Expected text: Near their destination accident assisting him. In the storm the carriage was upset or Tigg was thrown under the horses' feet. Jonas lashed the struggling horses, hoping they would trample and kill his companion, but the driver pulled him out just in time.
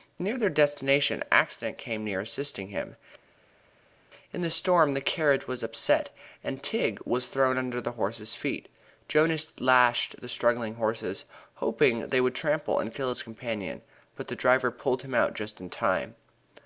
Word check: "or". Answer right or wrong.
wrong